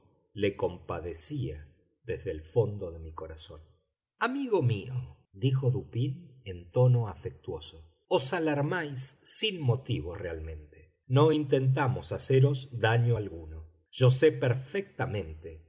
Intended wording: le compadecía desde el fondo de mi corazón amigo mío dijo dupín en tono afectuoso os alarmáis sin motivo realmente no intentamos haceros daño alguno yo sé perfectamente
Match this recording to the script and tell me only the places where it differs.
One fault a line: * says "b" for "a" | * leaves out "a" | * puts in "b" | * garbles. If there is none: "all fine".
all fine